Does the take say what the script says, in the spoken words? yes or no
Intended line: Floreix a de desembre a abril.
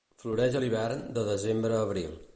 no